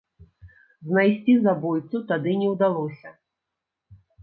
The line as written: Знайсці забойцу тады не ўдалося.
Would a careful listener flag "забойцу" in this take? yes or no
no